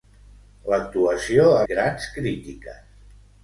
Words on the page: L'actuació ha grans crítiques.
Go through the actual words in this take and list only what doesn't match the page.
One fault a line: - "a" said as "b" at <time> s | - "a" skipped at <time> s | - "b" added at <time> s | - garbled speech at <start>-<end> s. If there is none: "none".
none